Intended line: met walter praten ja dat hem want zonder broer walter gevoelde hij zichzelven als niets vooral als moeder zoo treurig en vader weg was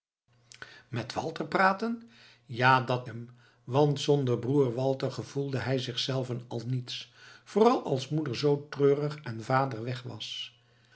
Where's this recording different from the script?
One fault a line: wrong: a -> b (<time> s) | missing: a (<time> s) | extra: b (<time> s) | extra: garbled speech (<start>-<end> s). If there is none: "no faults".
no faults